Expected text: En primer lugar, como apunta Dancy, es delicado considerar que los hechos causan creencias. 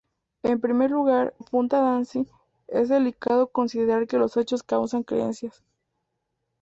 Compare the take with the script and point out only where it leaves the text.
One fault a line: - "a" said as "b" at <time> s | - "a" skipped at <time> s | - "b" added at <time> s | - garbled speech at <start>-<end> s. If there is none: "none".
- "como" skipped at 1.4 s